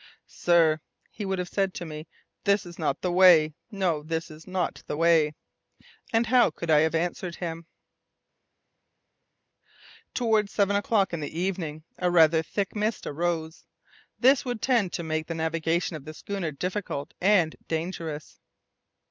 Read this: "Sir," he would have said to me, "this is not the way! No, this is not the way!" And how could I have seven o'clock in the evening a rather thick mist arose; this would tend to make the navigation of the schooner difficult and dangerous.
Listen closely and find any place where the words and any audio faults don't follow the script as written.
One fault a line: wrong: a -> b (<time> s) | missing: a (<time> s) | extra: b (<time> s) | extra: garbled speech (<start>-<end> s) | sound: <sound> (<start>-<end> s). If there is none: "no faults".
extra: answered him Towards (7.0 s)